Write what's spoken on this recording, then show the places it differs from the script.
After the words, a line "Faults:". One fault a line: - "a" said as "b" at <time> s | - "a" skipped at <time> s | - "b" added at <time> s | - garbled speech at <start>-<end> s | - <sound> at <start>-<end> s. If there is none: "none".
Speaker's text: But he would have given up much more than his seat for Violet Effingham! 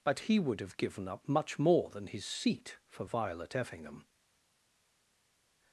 But he would have given up much more than his seat for Violet Effingham!
Faults:
none